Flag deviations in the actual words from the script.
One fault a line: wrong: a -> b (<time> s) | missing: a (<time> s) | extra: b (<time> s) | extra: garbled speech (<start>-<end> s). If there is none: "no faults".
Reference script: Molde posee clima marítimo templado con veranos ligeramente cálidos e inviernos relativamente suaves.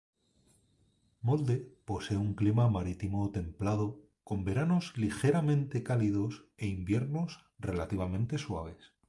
extra: un (2.2 s)